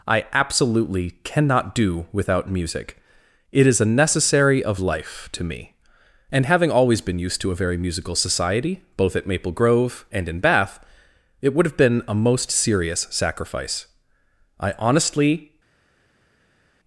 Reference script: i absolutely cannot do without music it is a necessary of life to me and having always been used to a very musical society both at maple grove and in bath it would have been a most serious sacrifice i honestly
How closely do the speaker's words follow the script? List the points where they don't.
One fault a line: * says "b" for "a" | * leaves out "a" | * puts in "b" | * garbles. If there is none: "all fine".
all fine